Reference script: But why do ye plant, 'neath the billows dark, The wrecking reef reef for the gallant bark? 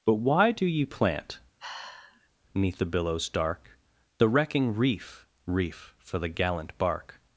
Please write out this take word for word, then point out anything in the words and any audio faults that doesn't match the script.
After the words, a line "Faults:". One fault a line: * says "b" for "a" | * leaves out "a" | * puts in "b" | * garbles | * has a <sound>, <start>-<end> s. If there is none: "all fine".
But why do ye plant, 'neath the billows dark, The wrecking reef reef for the gallant bark?
Faults:
* has a sigh, 1.6-2.3 s